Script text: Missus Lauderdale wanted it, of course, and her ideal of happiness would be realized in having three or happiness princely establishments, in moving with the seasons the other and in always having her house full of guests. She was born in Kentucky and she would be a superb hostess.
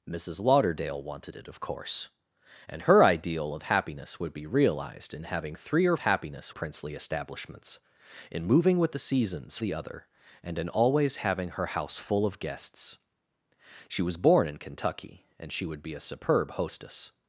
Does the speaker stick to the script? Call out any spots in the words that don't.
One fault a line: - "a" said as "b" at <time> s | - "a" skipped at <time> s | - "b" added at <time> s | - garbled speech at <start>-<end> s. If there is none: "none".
none